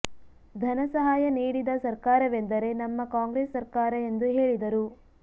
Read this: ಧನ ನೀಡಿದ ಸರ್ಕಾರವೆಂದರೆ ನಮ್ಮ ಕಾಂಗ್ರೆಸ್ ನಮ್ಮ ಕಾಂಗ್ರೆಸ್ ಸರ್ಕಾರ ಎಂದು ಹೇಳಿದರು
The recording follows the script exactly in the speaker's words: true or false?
false